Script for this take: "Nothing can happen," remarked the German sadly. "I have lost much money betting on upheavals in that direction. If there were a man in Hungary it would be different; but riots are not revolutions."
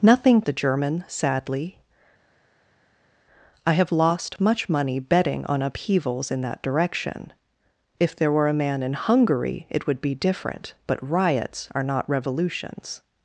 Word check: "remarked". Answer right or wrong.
wrong